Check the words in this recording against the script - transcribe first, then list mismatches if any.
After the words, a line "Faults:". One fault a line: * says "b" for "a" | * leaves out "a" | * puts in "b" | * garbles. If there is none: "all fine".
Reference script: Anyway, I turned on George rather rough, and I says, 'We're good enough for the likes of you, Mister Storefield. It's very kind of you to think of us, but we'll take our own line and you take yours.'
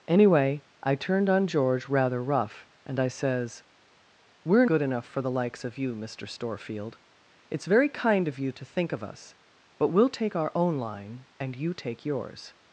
Anyway, I turned on George rather rough, and I says, 'We're good enough for the likes of you, Mister Storefield. It's very kind of you to think of us, but we'll take our own line and you take yours.'
Faults:
all fine